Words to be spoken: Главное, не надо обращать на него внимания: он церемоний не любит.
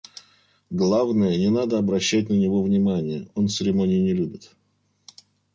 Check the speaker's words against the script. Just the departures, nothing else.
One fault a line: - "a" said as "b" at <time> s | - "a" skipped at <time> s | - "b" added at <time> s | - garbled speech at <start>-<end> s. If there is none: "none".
none